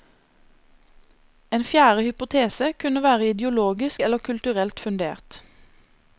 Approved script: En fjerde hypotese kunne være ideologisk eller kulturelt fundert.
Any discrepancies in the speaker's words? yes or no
no